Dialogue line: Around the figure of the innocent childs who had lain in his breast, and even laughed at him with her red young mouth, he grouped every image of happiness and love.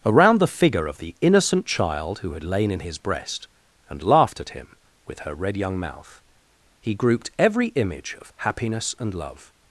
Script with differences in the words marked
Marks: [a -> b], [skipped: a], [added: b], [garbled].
Around the figure of the innocent [childs -> child] who had lain in his breast, and [skipped: even] laughed at him with her red young mouth, he grouped every image of happiness and love.